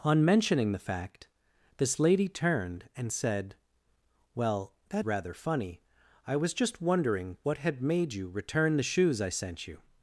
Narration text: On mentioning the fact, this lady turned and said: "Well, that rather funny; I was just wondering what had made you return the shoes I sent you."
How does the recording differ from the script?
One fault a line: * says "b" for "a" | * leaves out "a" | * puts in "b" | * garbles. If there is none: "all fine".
all fine